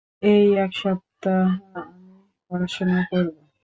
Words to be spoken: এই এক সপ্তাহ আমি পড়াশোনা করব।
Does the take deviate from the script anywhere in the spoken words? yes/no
no